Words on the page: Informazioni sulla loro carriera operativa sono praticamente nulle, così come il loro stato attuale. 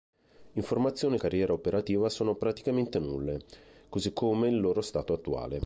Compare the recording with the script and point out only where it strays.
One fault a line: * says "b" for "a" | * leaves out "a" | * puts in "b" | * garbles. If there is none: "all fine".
* leaves out "sulla loro"